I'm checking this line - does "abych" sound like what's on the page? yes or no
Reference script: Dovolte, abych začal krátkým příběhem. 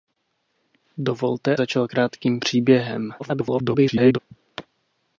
no